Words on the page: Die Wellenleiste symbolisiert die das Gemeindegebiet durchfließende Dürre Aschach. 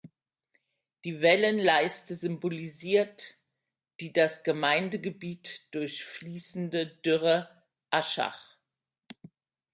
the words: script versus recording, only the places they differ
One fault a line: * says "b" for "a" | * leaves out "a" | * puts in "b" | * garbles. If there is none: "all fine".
all fine